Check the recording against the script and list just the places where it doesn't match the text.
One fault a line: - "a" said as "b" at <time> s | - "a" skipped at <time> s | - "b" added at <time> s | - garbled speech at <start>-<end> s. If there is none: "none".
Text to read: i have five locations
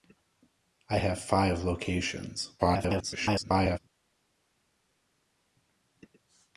- garbled speech at 2.6-3.8 s